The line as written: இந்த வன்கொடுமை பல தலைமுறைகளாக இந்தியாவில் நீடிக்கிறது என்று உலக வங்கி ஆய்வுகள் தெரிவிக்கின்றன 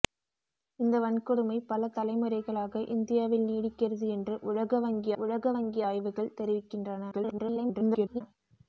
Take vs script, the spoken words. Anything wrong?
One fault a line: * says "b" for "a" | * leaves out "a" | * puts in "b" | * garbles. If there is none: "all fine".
* puts in "உலக வங்கி"
* garbles